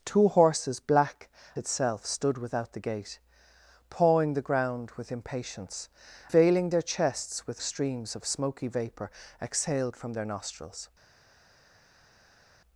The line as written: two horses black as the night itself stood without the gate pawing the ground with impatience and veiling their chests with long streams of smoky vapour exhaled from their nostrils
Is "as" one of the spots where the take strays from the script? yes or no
yes